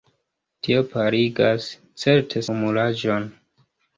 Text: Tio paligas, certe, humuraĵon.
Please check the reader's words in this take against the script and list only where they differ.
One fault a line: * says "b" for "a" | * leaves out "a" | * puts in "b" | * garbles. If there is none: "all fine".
all fine